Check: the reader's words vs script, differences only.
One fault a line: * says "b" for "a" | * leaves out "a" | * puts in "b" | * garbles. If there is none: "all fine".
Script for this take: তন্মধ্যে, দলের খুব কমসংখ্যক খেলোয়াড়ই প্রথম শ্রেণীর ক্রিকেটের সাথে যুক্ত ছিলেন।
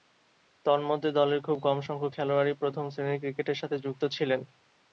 all fine